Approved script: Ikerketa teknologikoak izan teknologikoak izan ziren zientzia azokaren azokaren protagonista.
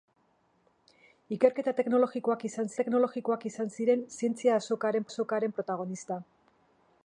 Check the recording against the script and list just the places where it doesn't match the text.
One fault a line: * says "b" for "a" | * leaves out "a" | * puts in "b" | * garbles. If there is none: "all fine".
all fine